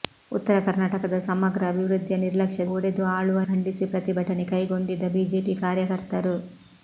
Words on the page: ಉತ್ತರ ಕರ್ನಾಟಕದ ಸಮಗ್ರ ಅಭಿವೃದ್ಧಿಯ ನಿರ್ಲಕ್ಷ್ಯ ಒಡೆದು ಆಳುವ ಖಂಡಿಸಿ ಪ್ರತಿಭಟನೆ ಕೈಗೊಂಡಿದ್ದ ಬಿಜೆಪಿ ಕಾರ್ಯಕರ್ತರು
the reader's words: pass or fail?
pass